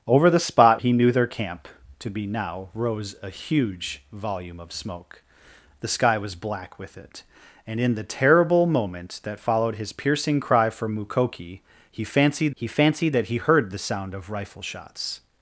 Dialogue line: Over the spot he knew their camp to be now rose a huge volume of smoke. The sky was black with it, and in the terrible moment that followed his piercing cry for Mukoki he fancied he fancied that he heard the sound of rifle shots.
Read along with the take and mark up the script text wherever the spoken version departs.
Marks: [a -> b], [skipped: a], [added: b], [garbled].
Over the spot he knew their camp to be now rose a huge volume of smoke. The sky was black with it, and in the terrible moment that followed his piercing cry for Mukoki he fancied he fancied that he heard the sound of rifle shots.